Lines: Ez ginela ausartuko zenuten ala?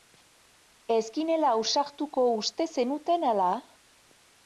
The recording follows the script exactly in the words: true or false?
false